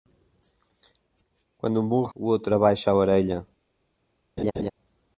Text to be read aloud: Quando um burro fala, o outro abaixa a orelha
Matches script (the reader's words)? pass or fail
fail